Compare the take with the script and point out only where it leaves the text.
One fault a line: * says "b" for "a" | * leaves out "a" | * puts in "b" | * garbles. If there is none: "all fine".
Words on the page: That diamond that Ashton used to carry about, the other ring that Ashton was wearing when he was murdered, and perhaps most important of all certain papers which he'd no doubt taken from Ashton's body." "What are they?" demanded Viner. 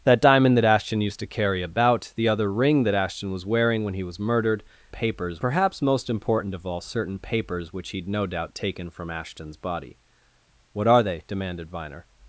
* says "papers" for "and"